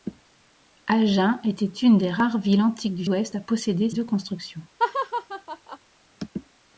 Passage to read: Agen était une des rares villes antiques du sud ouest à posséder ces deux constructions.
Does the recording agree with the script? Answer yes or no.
no